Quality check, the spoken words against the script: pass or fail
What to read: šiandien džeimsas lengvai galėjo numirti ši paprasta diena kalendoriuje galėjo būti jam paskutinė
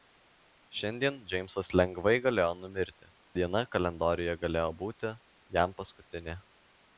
fail